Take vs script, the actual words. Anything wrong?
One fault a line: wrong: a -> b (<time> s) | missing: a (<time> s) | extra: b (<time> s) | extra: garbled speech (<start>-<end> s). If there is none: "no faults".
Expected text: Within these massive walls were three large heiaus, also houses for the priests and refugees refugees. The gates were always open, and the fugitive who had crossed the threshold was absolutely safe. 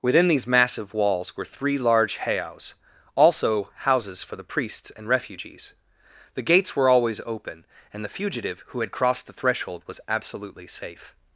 missing: refugees (5.7 s)